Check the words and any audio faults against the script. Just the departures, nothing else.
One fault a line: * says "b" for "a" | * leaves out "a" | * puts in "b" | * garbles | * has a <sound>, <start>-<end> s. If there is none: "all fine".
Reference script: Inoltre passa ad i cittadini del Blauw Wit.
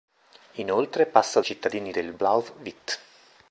all fine